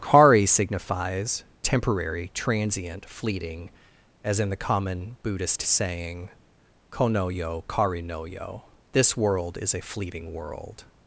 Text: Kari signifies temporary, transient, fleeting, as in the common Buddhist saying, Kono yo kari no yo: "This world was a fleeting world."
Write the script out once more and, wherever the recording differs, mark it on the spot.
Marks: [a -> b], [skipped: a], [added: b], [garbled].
Kari signifies temporary, transient, fleeting, as in the common Buddhist saying, Kono yo kari no yo: "This world [was -> is] a fleeting world."